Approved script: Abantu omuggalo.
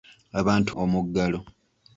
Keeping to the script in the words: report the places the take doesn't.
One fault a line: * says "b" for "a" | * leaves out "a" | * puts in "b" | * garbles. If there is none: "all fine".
all fine